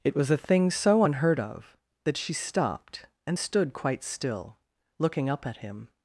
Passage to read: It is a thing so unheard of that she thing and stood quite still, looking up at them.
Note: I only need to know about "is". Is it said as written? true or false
false